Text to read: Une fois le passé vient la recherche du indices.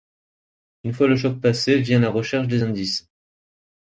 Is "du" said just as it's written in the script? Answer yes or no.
no